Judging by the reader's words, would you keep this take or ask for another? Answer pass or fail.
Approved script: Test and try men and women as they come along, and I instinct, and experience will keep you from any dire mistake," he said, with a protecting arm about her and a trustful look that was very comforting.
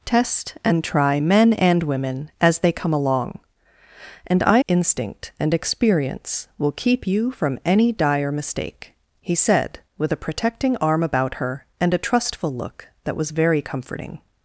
pass